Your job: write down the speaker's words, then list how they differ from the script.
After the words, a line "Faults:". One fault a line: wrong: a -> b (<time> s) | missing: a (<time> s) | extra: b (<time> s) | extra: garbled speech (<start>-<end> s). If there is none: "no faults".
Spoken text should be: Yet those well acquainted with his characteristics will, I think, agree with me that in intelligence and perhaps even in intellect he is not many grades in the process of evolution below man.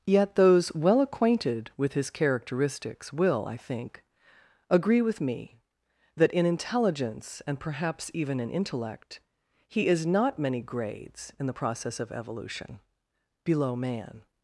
Yet those well acquainted with his characteristics will, I think, agree with me that in intelligence and perhaps even in intellect he is not many grades in the process of evolution below man.
Faults:
no faults